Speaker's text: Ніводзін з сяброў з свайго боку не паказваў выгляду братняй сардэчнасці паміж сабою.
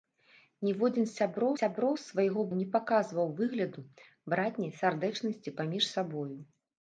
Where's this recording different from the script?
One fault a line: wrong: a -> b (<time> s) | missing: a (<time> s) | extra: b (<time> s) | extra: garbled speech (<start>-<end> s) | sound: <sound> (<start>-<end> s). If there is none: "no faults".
extra: сяброў (1.6 s)
missing: боку (2.4 s)